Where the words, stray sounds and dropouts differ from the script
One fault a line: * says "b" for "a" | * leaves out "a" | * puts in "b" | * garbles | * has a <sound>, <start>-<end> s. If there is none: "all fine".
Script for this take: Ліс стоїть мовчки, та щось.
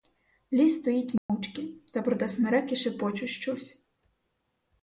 * has a dropout, 1.2-1.3 s
* puts in "проте смереки шепочуть"